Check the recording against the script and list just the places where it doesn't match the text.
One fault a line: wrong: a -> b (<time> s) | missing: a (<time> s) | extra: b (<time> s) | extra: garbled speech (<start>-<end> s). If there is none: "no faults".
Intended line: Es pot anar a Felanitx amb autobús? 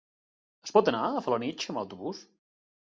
no faults